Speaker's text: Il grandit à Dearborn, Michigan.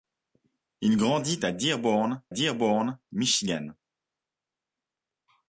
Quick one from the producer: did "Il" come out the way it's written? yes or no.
yes